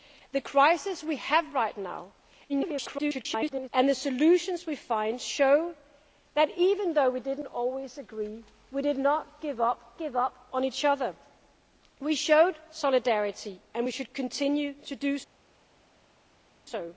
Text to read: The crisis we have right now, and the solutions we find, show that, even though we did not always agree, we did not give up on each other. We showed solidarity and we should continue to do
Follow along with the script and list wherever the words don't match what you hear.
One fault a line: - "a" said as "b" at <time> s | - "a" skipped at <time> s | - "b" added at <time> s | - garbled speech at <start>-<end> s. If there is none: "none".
- garbled speech at 2.5-3.7 s
- "give up" added at 10.0 s